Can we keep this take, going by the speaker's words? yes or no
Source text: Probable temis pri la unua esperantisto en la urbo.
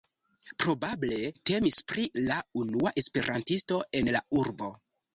yes